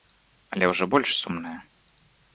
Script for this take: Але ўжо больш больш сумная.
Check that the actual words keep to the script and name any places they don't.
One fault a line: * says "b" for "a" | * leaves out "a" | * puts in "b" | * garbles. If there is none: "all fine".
* leaves out "больш"